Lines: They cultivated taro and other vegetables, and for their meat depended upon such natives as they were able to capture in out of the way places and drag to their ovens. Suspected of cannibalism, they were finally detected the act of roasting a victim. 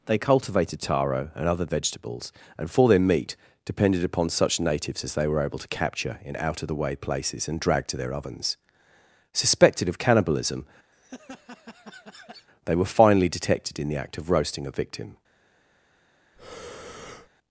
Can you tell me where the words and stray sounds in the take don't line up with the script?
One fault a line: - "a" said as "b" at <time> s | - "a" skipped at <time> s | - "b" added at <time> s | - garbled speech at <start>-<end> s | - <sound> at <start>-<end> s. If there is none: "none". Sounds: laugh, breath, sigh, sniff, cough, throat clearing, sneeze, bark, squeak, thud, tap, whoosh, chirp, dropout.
- laugh at 10.9-12.5 s
- "in" added at 13.8 s
- breath at 16.4-17.3 s